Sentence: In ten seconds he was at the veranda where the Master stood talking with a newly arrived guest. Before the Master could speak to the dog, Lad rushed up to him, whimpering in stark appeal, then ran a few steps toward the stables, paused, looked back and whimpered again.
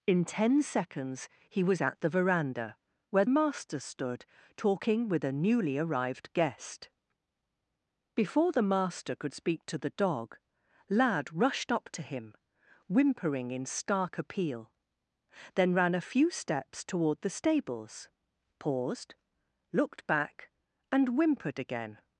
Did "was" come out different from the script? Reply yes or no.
no